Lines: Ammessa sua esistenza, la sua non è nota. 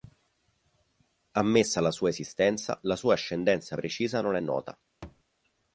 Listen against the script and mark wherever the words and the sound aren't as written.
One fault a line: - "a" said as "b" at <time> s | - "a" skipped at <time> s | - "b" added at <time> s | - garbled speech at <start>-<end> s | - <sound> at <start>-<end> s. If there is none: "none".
- "la" added at 1.8 s
- "ascendenza precisa" added at 3.1 s
- thud at 5.0-5.2 s